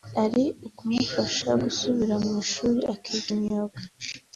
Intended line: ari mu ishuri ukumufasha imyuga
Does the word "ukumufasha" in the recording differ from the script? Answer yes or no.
yes